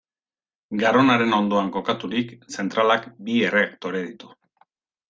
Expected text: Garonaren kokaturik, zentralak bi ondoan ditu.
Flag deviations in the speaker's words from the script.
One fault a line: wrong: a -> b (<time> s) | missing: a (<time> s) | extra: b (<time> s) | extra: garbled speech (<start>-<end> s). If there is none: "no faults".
extra: ondoan (1.4 s)
wrong: ondoan -> erreaktore (3.5 s)